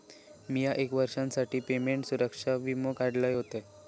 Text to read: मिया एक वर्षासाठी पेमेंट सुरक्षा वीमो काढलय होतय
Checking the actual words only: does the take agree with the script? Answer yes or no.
yes